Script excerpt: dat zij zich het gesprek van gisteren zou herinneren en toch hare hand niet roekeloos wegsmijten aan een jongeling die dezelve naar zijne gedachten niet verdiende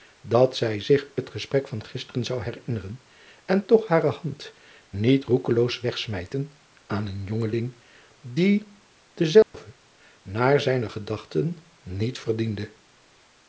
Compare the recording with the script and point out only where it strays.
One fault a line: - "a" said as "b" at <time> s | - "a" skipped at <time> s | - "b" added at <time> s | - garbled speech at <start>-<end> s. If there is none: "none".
none